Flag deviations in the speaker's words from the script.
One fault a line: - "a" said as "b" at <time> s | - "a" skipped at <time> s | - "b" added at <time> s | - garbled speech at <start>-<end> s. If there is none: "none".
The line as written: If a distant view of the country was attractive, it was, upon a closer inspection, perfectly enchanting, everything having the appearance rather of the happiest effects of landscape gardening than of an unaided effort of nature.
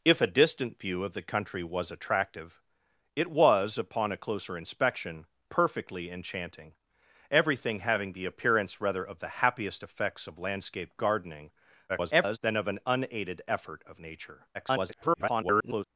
- garbled speech at 11.9-12.4 s
- garbled speech at 14.5-15.8 s